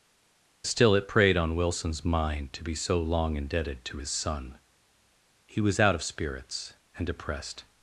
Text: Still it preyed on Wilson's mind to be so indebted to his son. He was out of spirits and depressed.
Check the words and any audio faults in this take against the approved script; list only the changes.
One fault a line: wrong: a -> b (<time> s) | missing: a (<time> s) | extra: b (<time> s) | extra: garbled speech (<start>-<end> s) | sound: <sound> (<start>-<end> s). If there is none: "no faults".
extra: long (3.0 s)